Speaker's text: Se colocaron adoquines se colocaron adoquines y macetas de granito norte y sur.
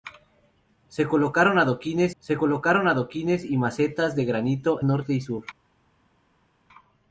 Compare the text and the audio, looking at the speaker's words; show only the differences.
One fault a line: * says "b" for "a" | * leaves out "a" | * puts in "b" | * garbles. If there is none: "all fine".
all fine